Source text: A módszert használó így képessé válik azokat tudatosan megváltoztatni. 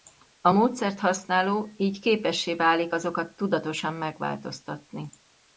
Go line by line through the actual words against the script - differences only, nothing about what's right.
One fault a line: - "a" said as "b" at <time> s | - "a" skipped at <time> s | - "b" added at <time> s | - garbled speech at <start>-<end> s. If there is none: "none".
none